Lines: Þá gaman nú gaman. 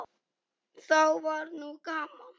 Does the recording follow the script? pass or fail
fail